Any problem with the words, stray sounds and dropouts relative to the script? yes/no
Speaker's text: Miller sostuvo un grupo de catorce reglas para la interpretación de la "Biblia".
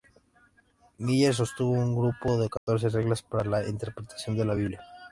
yes